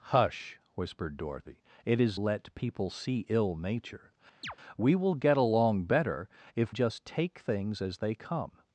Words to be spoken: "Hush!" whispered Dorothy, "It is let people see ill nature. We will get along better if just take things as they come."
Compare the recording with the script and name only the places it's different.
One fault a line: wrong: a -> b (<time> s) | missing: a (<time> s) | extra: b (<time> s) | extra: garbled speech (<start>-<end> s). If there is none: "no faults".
no faults